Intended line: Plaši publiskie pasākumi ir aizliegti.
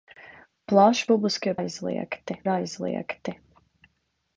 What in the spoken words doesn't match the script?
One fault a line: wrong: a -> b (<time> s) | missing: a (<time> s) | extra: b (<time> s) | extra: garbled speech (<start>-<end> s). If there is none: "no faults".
wrong: pasākumi -> aizliegti (1.6 s)